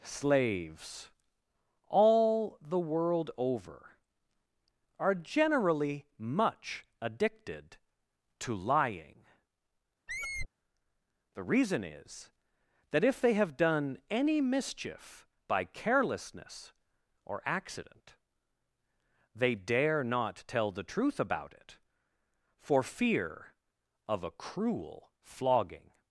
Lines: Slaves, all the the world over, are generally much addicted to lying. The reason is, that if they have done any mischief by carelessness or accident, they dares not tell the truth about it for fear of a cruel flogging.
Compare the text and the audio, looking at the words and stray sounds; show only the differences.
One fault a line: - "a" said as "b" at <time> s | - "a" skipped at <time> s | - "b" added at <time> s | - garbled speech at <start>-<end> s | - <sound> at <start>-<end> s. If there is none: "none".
- "the" skipped at 2.8 s
- squeak at 10.1-10.5 s
- "dares" said as "dare" at 19.5 s